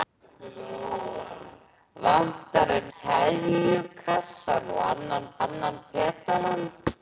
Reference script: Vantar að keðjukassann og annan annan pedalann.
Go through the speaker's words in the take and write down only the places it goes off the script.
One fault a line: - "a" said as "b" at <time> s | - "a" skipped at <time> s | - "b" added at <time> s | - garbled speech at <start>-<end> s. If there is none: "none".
none